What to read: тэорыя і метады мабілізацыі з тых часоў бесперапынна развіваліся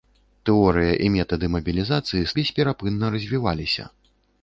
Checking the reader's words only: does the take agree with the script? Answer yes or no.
no